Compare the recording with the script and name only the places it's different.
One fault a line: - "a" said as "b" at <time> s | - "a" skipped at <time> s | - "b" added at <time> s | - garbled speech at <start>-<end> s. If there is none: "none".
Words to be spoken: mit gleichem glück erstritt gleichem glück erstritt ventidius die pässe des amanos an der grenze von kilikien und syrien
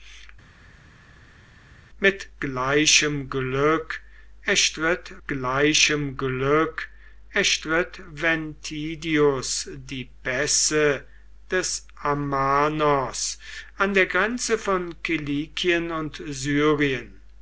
none